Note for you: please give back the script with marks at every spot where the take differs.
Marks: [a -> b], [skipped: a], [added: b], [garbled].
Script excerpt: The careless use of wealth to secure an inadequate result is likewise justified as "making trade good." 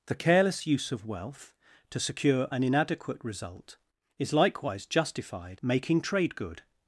The careless use of wealth to secure an inadequate result is likewise justified [skipped: as] "making trade good."